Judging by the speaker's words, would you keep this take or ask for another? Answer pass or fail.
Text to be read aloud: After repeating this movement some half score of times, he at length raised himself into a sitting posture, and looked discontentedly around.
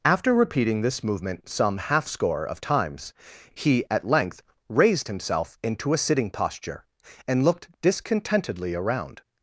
pass